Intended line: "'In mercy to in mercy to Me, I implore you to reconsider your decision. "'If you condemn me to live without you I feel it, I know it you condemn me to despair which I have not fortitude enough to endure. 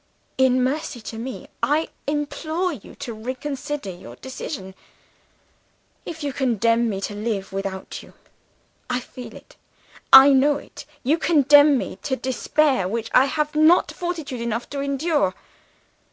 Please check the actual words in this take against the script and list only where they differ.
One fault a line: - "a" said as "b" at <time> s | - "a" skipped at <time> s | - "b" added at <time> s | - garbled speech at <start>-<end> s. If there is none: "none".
- "in mercy to" skipped at 1.2 s